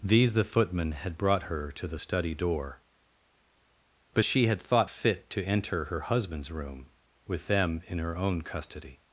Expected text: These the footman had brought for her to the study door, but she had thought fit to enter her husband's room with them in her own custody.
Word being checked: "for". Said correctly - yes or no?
no